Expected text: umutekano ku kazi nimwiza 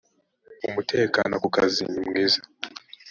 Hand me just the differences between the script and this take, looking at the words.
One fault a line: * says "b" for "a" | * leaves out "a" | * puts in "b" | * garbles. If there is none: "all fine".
all fine